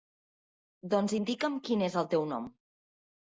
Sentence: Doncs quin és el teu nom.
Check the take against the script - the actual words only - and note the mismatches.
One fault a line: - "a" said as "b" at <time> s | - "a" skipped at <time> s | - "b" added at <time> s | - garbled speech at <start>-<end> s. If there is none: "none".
- "indica'm" added at 1.1 s